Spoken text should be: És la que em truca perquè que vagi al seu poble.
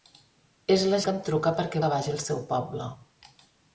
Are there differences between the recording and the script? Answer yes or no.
no